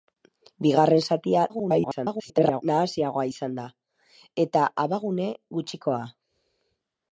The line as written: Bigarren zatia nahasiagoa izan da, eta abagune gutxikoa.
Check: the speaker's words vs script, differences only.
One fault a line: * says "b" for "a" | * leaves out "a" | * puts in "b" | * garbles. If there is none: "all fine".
* garbles